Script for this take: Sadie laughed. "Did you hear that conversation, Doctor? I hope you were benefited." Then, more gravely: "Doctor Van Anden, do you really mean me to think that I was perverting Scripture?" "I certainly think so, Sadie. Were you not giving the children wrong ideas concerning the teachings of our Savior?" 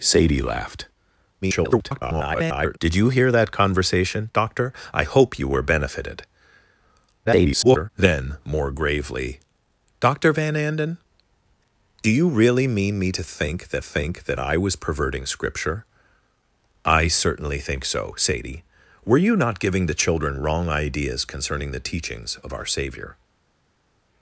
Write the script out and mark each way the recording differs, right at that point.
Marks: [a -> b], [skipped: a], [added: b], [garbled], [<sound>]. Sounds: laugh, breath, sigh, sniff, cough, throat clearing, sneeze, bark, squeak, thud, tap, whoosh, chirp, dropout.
Sadie laughed. [garbled] "Did you hear that conversation, Doctor? I hope you were benefited." [garbled] Then, more gravely: "Doctor Van Anden, do you really mean me to think that [added: think that] I was perverting Scripture?" "I certainly think so, Sadie. Were you not giving the children wrong ideas concerning the teachings of our Savior?"